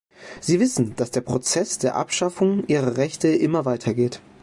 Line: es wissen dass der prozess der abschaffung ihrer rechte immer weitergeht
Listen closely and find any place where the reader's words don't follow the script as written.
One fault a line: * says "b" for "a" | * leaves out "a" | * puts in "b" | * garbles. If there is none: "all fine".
* says "sie" for "es"